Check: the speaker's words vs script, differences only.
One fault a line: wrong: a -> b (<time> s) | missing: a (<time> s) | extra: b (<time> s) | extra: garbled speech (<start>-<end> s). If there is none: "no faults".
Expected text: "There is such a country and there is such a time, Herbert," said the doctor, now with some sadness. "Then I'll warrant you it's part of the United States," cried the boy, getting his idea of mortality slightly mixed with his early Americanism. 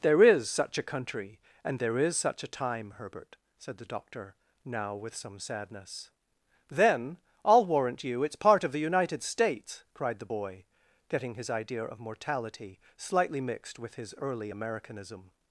no faults